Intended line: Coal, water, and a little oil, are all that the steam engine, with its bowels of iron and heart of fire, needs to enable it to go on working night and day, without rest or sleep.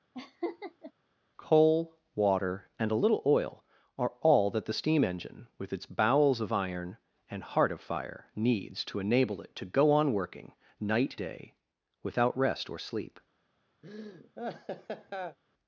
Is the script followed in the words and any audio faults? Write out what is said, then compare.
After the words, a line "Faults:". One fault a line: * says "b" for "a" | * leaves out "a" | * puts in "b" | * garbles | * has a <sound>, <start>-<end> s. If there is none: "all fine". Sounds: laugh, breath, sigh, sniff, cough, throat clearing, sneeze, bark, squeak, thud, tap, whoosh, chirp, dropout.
Coal, water, and a little oil, are all that the steam engine, with its bowels of iron and heart of fire, needs to enable it to go on working night day, without rest or sleep.
Faults:
* has a laugh, 0.1-0.9 s
* leaves out "and"
* has a laugh, 13.8-15.4 s